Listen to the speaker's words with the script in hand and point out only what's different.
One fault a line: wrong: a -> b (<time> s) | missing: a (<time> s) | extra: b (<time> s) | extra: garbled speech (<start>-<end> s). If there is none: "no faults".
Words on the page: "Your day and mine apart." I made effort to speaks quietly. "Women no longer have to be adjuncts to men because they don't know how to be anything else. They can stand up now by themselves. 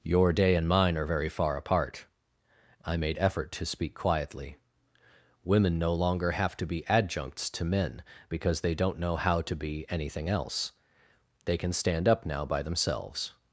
extra: are very far (1.0 s)
wrong: speaks -> speak (3.6 s)